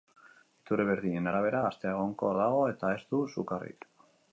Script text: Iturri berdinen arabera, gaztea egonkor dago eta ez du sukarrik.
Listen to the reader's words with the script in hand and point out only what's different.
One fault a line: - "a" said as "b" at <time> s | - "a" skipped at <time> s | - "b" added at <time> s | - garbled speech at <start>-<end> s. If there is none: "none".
none